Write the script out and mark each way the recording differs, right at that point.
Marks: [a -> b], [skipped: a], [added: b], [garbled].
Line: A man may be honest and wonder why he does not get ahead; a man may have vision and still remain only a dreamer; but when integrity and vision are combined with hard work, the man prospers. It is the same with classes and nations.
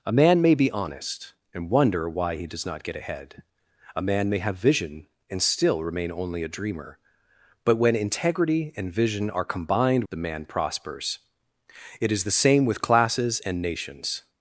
A man may be honest and wonder why he does not get ahead; a man may have vision and still remain only a dreamer; but when integrity and vision are combined [skipped: with hard work,] the man prospers. It is the same with classes and nations.